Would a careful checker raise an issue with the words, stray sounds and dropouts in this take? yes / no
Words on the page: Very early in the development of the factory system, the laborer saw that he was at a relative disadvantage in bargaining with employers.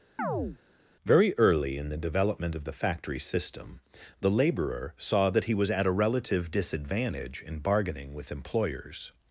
yes